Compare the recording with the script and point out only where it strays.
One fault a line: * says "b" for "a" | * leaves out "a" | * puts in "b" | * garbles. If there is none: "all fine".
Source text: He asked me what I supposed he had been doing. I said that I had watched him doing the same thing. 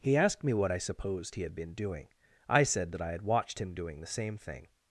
all fine